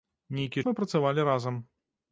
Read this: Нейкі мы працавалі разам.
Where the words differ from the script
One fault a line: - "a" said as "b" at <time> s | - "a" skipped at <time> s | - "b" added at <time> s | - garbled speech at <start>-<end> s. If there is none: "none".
none